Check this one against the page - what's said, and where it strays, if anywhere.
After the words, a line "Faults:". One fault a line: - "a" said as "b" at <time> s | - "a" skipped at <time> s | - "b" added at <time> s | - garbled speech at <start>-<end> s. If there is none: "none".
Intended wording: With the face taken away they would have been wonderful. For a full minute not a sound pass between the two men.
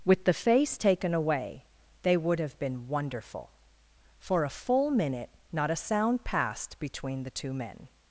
With the face taken away they would have been wonderful. For a full minute not a sound passed between the two men.
Faults:
- "pass" said as "passed" at 6.2 s